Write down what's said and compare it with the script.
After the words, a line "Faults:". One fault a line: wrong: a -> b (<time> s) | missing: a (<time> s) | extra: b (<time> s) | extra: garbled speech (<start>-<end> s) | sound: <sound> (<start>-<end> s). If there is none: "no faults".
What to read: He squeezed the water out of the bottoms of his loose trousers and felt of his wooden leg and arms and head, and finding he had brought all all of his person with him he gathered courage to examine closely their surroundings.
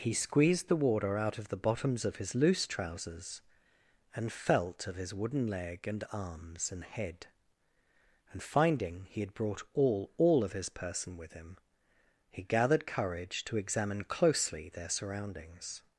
He squeezed the water out of the bottoms of his loose trousers and felt of his wooden leg and arms and head, and finding he had brought all all of his person with him he gathered courage to examine closely their surroundings.
Faults:
no faults